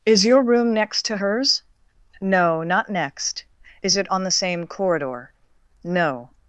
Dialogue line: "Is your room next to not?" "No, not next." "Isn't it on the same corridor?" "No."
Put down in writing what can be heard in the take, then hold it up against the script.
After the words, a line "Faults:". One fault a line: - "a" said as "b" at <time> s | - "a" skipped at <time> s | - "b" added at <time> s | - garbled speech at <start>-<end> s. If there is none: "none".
"Is your room next to hers?" "No, not next." "Is it on the same corridor?" "No."
Faults:
- "not" said as "hers" at 1.2 s
- "Isn't" said as "Is" at 3.8 s